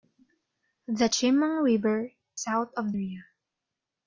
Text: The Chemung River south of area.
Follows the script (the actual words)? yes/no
yes